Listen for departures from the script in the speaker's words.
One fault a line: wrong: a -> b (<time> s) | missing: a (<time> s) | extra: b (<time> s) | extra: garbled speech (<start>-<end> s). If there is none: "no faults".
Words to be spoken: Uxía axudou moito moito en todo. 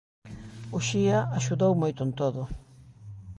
missing: moito (2.0 s)